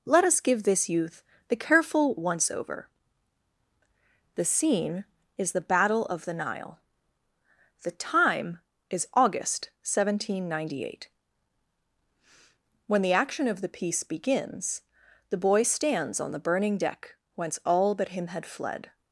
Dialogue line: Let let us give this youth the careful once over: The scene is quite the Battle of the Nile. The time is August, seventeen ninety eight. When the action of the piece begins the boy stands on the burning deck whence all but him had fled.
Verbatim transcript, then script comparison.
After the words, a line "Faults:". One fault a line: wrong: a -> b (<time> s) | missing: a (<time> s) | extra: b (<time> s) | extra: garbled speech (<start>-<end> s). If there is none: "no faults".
Let us give this youth the careful once over: The scene is the Battle of the Nile. The time is August, seventeen ninety eight. When the action of the piece begins the boy stands on the burning deck whence all but him had fled.
Faults:
missing: let (0.2 s)
missing: quite (5.5 s)